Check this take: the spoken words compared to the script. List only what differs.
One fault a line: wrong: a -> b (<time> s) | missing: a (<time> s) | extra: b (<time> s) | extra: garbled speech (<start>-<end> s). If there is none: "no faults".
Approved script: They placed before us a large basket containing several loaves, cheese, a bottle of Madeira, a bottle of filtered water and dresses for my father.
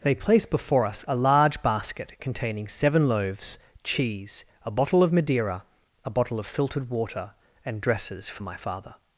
wrong: placed -> place (0.1 s)
wrong: several -> seven (2.7 s)